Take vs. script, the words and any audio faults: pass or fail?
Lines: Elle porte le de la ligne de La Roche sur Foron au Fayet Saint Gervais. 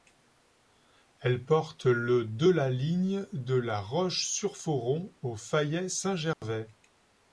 fail